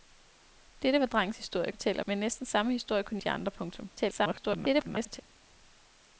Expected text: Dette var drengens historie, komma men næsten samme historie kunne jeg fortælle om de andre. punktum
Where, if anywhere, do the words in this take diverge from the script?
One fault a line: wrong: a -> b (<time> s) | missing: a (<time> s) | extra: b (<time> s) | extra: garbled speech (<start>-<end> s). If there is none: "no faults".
wrong: komma -> fortælle (1.7 s)
missing: jeg fortælle om (3.2 s)
extra: garbled speech (4.0-5.2 s)